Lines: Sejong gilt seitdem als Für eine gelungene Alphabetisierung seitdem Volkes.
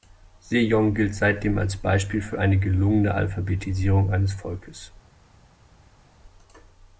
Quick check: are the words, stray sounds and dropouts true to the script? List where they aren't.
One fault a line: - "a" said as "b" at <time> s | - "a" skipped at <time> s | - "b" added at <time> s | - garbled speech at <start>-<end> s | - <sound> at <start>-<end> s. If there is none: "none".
- "Beispiel" added at 1.8 s
- "seitdem" said as "eines" at 4.1 s